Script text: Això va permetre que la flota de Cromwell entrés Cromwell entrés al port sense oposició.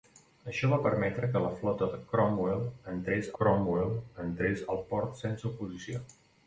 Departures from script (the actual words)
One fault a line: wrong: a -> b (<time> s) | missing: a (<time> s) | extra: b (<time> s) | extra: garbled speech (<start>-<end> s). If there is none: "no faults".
no faults